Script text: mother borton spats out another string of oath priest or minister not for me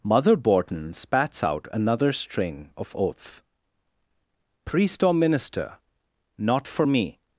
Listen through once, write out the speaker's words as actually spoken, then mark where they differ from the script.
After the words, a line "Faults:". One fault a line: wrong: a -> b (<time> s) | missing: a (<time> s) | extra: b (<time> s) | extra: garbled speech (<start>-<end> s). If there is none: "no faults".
mother borton spats out another string of oath priest or minister not for me
Faults:
no faults